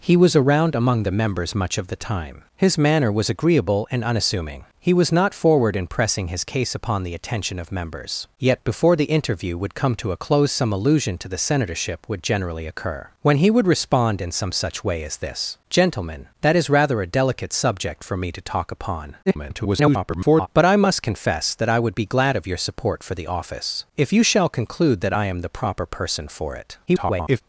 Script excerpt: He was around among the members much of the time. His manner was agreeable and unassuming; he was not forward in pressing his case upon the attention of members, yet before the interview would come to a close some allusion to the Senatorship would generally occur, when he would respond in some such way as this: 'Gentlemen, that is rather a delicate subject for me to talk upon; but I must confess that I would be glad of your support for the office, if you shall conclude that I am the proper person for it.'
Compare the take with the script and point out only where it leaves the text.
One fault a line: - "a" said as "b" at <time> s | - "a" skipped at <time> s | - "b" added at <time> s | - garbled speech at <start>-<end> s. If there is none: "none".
- garbled speech at 19.3-20.5 s
- garbled speech at 26.9-27.4 s